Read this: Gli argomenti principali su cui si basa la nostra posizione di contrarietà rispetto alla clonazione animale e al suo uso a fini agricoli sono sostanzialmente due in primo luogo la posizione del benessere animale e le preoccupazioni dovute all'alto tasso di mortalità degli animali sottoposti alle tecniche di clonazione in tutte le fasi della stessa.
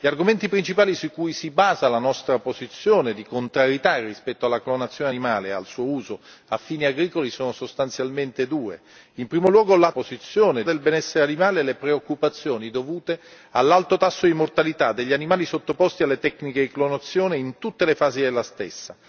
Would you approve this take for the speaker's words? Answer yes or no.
yes